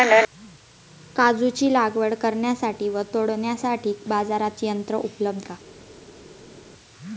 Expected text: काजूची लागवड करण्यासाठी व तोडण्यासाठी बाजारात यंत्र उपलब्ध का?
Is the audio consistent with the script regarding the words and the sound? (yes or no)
yes